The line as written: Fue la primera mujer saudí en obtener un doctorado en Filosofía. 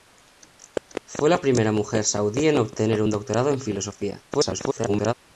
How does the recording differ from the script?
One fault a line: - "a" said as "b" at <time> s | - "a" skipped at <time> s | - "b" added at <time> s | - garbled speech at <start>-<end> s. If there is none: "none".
- garbled speech at 4.3-5.1 s